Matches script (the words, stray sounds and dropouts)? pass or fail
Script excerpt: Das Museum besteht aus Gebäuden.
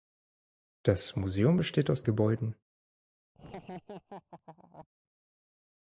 fail